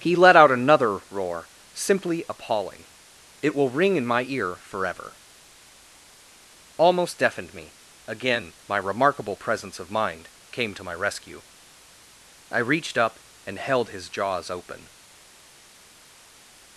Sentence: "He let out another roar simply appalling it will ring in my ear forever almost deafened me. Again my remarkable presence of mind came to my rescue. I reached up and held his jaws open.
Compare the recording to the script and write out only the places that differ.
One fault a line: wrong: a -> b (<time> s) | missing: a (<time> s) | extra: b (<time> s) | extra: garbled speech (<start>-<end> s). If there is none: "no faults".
no faults